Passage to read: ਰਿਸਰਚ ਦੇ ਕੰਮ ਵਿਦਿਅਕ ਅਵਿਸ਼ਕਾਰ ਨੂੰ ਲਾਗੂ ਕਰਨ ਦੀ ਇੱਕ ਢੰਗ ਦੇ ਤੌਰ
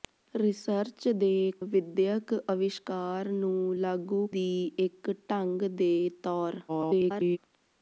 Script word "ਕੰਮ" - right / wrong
wrong